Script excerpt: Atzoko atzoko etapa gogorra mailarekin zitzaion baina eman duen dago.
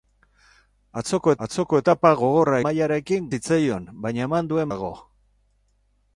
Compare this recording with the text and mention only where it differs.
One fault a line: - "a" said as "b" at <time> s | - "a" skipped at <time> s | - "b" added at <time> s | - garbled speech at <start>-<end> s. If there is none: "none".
none